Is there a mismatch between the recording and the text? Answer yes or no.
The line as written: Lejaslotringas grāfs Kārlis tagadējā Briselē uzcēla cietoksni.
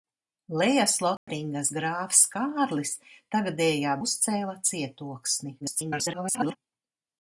yes